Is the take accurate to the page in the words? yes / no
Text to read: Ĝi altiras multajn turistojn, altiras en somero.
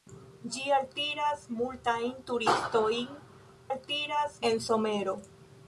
yes